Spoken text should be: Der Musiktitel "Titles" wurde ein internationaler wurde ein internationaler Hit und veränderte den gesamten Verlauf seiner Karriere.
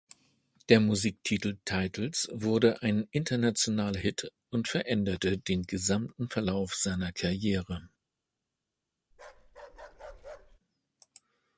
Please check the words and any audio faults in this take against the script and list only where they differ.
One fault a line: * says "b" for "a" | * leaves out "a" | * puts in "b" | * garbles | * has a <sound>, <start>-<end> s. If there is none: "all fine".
* leaves out "wurde ein internationaler"
* has a bark, 9.1-10.6 s